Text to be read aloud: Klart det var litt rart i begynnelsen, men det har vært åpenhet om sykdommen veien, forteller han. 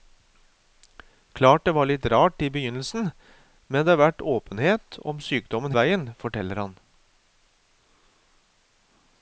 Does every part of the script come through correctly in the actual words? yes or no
yes